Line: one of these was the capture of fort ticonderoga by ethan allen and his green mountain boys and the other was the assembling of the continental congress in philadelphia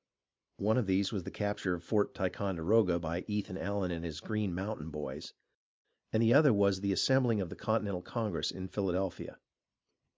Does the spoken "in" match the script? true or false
true